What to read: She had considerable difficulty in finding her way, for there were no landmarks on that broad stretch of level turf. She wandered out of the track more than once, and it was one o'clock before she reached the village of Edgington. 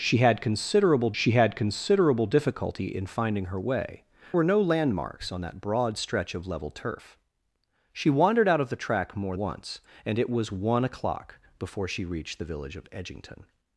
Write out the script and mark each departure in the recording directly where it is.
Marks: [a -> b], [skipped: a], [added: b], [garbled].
She had considerable [added: she had considerable] difficulty in finding her way, [skipped: for there] were no landmarks on that broad stretch of level turf. She wandered out of the track more [skipped: than] once, and it was one o'clock before she reached the village of Edgington.